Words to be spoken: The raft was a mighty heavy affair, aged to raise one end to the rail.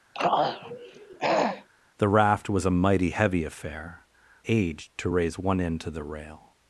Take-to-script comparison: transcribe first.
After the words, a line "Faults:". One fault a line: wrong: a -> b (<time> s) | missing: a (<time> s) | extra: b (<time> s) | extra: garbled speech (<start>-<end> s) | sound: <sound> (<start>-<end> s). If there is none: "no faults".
The raft was a mighty heavy affair, aged to raise one end to the rail.
Faults:
sound: throat clearing (0.1-1.7 s)